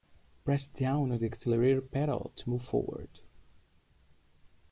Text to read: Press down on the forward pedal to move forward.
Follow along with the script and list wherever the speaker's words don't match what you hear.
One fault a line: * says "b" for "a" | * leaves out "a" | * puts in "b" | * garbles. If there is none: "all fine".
* says "accelerator" for "forward"